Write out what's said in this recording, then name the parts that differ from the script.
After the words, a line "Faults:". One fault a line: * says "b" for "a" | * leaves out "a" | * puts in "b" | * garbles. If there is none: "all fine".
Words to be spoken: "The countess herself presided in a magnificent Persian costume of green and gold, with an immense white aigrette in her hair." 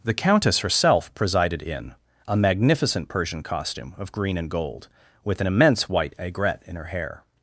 "The countess herself presided in a magnificent Persian costume of green and gold, with an immense white aigrette in her hair."
Faults:
all fine